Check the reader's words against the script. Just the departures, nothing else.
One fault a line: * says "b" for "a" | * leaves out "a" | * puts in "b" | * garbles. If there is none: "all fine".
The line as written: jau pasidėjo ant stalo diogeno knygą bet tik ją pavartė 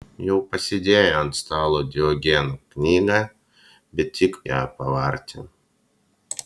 all fine